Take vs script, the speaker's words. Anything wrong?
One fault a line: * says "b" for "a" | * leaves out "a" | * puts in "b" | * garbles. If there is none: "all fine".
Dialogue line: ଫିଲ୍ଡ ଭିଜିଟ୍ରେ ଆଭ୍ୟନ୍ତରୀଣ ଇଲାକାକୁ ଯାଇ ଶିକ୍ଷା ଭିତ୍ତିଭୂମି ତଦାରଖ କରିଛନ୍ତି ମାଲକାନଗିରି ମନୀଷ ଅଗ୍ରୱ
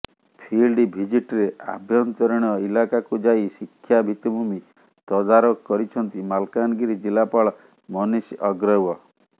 * puts in "ଜିଲ୍ଲାପାଳ"